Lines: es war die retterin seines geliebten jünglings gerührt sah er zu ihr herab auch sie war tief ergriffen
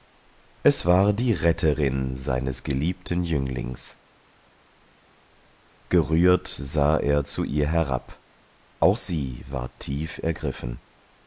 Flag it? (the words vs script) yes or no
no